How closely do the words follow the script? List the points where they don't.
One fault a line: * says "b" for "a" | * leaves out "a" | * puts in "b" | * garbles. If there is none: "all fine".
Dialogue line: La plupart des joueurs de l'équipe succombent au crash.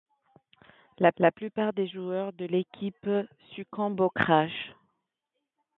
* puts in "la"